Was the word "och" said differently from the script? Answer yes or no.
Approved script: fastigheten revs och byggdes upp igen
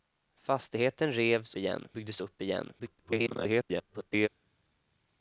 yes